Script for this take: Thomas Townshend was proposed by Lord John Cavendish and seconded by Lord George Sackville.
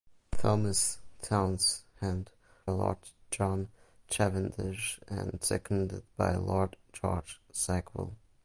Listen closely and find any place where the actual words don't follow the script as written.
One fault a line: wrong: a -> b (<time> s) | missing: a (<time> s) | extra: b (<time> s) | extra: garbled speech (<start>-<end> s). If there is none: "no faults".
missing: was proposed by (2.3 s)